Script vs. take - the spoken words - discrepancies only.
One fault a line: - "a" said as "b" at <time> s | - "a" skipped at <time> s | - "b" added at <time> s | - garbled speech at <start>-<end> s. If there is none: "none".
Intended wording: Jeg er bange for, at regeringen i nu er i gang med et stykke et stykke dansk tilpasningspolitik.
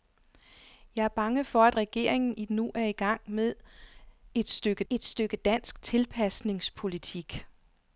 none